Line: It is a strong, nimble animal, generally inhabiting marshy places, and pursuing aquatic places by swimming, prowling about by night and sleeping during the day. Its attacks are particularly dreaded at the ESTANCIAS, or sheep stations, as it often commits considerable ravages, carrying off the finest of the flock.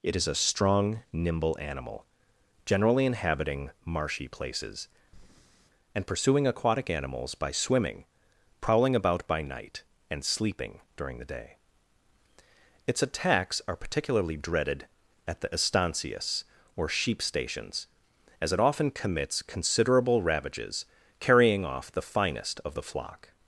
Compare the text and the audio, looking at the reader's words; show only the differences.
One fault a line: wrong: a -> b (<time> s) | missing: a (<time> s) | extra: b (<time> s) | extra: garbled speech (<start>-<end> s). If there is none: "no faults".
wrong: places -> animals (6.9 s)